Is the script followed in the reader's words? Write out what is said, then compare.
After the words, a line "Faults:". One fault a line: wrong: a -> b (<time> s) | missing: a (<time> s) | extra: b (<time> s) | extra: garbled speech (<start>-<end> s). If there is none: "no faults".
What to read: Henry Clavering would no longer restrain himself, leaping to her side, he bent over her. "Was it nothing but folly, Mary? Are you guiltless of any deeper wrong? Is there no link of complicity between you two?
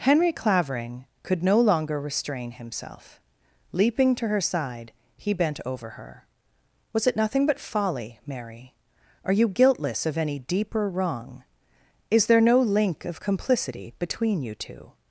Henry Clavering could no longer restrain himself, leaping to her side, he bent over her. "Was it nothing but folly, Mary? Are you guiltless of any deeper wrong? Is there no link of complicity between you two?
Faults:
wrong: would -> could (1.2 s)